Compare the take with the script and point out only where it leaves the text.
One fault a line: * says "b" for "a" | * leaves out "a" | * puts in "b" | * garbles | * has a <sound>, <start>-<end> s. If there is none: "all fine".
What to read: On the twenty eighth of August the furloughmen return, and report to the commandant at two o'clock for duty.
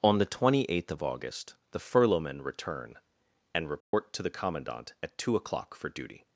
* has a dropout, 3.8-3.9 s